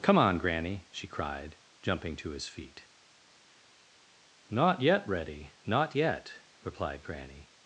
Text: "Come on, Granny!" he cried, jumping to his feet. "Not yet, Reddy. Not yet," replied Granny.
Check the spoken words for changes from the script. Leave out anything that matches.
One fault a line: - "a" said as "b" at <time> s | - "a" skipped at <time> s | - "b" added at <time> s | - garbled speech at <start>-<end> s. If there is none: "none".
- "he" said as "she" at 0.9 s